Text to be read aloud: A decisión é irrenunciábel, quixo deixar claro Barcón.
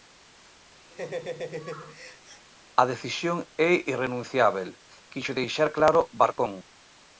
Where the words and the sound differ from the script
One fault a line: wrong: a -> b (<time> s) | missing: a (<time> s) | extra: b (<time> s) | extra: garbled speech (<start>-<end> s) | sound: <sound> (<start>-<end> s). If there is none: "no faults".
sound: laugh (0.9-2.4 s)